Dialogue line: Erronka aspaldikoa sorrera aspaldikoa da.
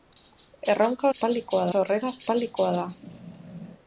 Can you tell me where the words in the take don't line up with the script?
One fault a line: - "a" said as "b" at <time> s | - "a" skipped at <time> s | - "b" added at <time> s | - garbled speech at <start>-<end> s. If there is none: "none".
none